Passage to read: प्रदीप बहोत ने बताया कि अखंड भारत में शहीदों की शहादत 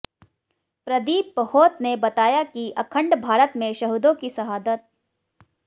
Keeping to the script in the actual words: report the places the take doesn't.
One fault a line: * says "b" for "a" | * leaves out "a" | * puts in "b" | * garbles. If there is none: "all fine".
all fine